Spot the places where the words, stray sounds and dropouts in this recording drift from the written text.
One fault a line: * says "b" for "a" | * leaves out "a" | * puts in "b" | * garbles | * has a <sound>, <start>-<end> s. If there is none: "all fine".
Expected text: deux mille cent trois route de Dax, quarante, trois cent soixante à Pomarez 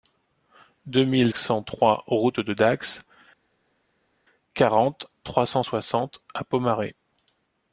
all fine